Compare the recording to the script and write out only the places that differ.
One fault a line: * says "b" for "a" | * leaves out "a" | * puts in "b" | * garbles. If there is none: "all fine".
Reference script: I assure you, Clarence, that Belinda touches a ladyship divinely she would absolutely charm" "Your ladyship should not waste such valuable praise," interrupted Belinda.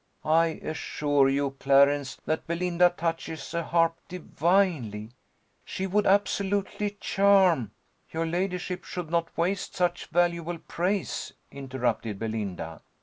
* says "harp" for "ladyship"